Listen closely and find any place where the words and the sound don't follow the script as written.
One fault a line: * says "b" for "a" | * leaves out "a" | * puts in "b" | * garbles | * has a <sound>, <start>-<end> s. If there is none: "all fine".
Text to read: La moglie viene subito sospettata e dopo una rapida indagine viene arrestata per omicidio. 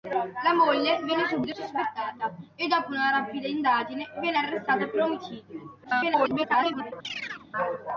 * garbles
* has a chirp, 7.0-7.5 s